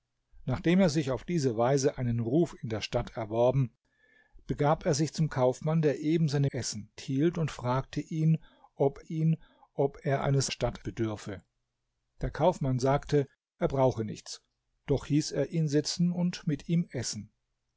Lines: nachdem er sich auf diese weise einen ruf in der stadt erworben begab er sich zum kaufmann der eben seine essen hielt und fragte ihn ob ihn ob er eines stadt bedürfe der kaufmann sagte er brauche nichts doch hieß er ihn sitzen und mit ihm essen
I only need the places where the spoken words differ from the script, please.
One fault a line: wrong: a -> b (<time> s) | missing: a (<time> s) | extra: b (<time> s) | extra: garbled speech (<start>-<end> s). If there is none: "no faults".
no faults